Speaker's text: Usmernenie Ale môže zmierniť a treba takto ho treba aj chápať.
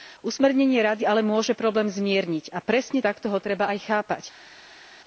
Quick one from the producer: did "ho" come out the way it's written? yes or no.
yes